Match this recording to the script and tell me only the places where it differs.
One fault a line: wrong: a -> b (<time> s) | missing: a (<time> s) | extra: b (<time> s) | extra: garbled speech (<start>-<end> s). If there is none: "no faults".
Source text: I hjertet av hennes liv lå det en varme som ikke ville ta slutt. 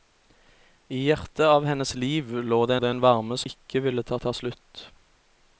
extra: det (2.8 s)
missing: som (3.4 s)
extra: ta (4.2 s)